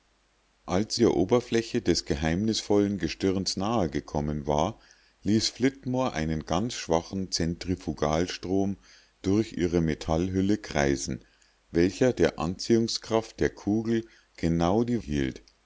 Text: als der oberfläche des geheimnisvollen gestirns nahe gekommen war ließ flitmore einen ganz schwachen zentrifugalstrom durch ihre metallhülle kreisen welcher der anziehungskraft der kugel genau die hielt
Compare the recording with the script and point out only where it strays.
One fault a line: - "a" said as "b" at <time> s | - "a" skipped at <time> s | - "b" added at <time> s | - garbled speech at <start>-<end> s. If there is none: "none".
none